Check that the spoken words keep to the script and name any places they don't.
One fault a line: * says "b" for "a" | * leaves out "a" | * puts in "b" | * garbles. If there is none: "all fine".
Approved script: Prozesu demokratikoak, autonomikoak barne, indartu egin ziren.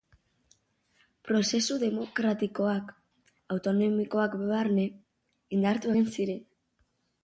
all fine